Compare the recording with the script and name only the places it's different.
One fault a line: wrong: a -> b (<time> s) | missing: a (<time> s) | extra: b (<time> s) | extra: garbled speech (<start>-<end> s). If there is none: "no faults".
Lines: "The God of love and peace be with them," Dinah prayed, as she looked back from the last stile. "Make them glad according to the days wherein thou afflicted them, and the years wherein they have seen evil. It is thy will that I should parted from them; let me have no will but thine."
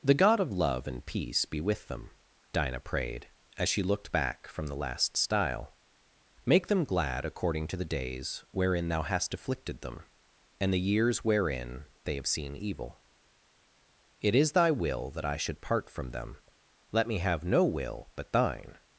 extra: hast (9.0 s)
wrong: parted -> part (15.6 s)